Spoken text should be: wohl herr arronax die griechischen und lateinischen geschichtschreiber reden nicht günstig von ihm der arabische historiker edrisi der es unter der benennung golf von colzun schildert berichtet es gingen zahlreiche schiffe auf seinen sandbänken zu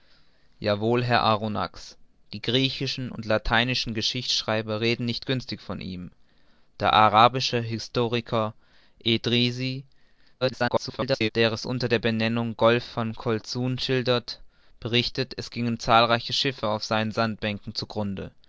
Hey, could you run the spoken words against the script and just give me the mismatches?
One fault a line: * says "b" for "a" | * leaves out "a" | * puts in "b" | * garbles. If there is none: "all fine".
* garbles